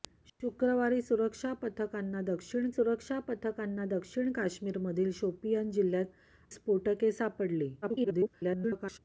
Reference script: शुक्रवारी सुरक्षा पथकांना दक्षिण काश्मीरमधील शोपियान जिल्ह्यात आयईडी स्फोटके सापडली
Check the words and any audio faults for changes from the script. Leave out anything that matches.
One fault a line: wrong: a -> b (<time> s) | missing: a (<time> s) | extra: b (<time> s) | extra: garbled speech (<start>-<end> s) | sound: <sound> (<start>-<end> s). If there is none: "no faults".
extra: सुरक्षा पथकांना दक्षिण (2.7 s)
missing: आयईडी (6.6 s)
extra: garbled speech (7.8-9.0 s)